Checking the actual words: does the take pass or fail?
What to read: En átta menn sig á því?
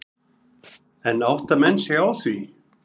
pass